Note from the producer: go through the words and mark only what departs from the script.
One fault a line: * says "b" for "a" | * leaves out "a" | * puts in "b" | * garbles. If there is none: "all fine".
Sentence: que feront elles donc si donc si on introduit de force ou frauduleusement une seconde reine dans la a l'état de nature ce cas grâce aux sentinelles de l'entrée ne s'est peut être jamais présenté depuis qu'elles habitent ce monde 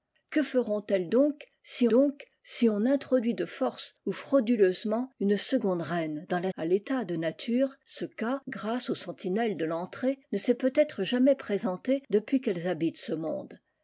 all fine